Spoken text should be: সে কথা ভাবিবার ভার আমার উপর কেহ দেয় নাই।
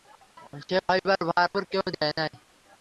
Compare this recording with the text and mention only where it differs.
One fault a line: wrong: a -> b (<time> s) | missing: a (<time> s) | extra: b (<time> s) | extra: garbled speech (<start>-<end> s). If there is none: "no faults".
missing: কথা (0.8 s)
missing: আমার (1.5 s)